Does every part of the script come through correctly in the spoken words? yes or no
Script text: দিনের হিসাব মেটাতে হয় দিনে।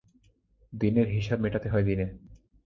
yes